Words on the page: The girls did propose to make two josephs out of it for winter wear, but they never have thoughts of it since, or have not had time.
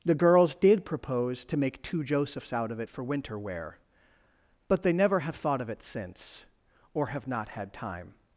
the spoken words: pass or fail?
fail